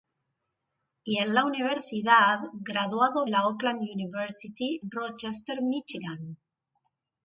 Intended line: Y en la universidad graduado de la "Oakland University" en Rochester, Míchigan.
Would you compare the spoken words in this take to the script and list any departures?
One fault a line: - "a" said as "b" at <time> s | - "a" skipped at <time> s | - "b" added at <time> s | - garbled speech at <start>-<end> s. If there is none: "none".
- "de" skipped at 3.3 s
- "en" skipped at 4.8 s